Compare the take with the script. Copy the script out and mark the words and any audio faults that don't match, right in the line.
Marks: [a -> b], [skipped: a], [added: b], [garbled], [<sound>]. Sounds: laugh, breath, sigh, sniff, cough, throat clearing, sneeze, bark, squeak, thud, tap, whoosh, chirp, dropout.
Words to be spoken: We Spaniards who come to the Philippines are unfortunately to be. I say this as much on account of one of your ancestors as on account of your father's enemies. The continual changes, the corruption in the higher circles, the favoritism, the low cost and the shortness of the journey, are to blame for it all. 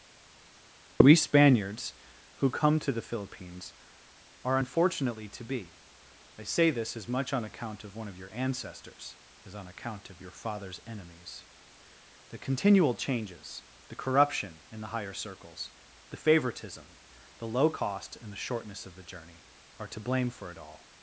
We Spaniards who come to the Philippines are unfortunately to be. I say this as much on account of one of your ancestors as on account of your father's enemies. The continual changes, the corruption in the higher circles, the favoritism, the low cost and the shortness of the journey, are to blame for it all.